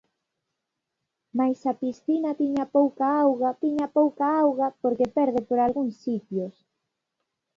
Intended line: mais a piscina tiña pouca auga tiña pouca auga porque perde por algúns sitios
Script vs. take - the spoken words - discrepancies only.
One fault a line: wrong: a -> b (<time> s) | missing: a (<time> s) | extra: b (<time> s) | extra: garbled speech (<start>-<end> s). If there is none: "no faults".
no faults